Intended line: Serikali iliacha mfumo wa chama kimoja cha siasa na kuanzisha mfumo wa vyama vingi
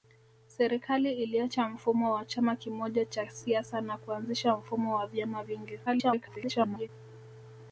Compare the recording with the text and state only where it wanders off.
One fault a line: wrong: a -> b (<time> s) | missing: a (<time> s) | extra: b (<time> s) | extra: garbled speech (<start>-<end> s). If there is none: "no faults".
extra: garbled speech (5.9-6.9 s)